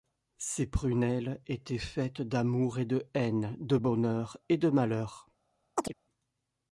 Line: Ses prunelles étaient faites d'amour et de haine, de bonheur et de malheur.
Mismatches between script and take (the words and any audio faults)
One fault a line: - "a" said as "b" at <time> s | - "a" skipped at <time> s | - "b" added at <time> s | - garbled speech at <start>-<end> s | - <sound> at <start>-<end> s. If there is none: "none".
- chirp at 5.8-5.9 s